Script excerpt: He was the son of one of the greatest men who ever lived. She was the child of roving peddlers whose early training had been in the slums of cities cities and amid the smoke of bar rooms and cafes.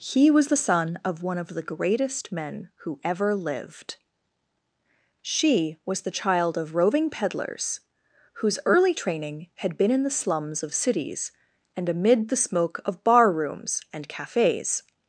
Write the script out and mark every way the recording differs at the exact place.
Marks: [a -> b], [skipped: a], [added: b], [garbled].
He was the son of one of the greatest men who ever lived. She was the child of roving peddlers whose early training had been in the slums of cities [skipped: cities] and amid the smoke of bar rooms and cafes.